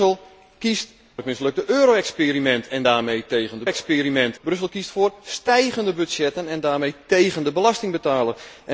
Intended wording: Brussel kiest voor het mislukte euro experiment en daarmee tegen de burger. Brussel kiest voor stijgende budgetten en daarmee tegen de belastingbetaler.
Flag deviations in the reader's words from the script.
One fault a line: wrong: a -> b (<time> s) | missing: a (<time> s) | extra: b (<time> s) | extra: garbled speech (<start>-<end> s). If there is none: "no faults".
missing: voor (0.9 s)
wrong: burger -> experiment (3.6 s)